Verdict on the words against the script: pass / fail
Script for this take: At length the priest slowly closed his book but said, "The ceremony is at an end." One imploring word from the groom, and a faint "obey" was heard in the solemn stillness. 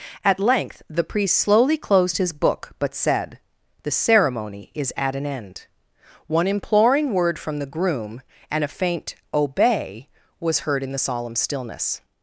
pass